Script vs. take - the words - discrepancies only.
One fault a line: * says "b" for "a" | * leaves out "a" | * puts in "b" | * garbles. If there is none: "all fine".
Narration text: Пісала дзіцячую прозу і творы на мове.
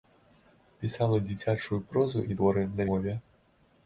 all fine